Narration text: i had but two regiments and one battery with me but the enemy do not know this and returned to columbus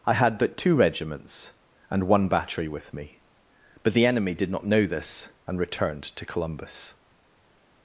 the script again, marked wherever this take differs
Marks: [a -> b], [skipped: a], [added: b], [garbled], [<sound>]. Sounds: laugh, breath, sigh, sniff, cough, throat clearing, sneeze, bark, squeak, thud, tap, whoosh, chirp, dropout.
i had but two regiments and one battery with me but the enemy [do -> did] not know this and returned to columbus